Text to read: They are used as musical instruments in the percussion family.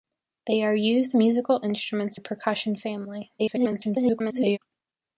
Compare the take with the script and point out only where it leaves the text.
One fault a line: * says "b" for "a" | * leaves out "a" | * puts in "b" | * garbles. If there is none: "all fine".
* leaves out "as"
* leaves out "in"
* garbles